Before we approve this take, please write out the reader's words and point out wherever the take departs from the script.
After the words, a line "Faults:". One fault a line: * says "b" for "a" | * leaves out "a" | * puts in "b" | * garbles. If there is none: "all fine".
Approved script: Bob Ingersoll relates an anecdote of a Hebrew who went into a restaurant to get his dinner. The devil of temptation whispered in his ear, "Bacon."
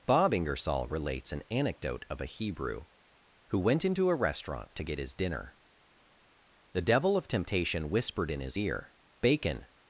Bob Ingersoll relates an anecdote of a Hebrew who went into a restaurant to get his dinner. The devil of temptation whispered in his ear, "Bacon."
Faults:
all fine